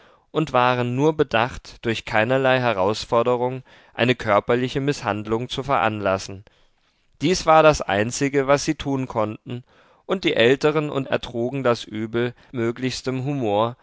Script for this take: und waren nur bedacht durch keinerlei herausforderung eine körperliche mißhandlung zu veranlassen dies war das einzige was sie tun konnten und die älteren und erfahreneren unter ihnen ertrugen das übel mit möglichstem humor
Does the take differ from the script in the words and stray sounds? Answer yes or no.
yes